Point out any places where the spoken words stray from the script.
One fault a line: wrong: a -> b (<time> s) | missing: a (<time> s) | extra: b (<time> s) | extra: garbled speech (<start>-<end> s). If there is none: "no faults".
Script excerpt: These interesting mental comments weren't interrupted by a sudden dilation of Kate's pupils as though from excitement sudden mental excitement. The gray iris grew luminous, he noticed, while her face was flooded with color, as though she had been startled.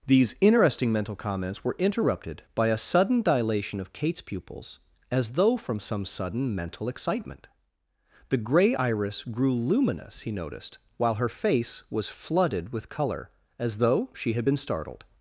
wrong: weren't -> were (1.6 s)
wrong: excitement -> some (5.8 s)